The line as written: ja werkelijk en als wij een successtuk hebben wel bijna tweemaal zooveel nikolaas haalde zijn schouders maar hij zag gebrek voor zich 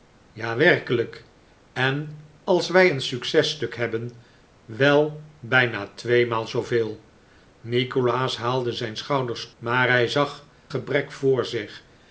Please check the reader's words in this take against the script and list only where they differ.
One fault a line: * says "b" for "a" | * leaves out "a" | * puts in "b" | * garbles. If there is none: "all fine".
all fine